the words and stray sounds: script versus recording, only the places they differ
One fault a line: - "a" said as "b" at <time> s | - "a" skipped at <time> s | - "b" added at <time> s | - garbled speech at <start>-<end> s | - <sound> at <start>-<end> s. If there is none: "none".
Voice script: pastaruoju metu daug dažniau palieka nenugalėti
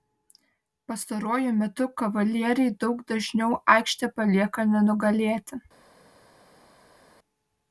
- "kavalieriai" added at 2.0 s
- "aikštę" added at 3.8 s